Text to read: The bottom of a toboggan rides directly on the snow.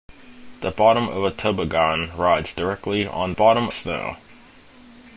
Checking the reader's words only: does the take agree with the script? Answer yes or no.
no